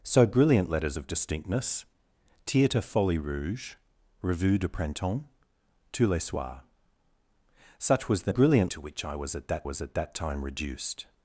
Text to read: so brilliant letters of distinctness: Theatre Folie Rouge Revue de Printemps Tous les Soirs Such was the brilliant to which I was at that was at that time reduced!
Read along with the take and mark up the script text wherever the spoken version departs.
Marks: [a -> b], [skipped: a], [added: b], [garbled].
so brilliant letters of distinctness: Theatre Folie Rouge Revue de Printemps Tous les Soirs Such was the brilliant to which I was at that was at that time reduced!